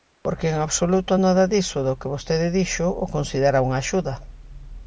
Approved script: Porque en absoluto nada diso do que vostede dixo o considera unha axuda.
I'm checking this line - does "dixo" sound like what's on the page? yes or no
yes